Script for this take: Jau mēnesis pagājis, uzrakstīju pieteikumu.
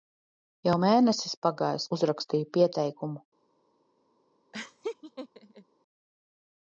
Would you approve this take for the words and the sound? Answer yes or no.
no